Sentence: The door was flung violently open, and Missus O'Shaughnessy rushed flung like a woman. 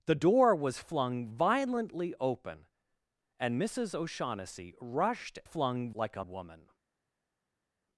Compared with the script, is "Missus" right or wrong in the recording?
right